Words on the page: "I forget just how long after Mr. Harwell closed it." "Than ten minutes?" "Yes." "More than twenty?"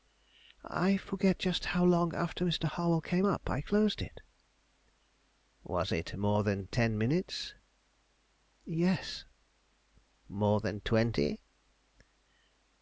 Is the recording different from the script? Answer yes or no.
yes